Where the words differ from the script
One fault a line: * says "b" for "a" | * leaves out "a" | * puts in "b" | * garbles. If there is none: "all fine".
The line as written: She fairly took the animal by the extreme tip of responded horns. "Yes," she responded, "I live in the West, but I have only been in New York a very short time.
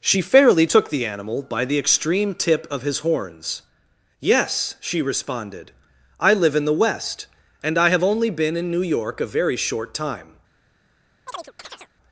* says "his" for "responded"
* says "and" for "but"